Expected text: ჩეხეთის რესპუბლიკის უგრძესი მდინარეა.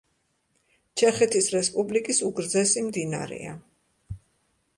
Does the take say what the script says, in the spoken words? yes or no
yes